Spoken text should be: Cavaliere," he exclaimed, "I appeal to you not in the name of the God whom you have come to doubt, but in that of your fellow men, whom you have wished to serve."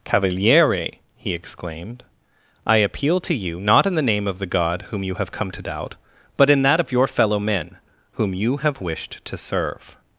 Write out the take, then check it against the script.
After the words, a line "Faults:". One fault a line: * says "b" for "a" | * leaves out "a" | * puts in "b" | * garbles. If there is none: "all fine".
Cavaliere," he exclaimed, "I appeal to you not in the name of the God whom you have come to doubt, but in that of your fellow men, whom you have wished to serve."
Faults:
all fine